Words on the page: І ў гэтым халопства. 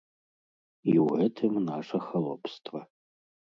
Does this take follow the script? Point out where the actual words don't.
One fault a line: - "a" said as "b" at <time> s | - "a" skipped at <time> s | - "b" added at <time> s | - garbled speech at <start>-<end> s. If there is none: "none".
- "наша" added at 1.7 s